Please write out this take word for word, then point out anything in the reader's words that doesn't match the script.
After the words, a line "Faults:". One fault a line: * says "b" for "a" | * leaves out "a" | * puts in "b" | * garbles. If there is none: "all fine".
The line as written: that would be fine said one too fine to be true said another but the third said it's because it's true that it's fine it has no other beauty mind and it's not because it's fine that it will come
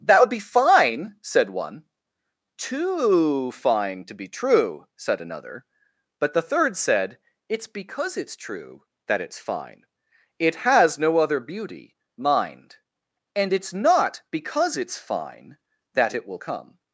that would be fine said one too fine to be true said another but the third said it's because it's true that it's fine it has no other beauty mind and it's not because it's fine that it will come
Faults:
all fine